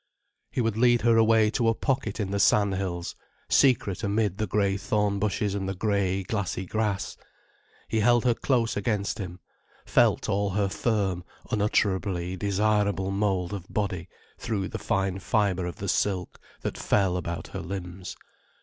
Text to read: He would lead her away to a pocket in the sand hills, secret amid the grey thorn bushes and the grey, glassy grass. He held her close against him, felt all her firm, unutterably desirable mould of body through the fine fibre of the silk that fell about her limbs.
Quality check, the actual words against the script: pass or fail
pass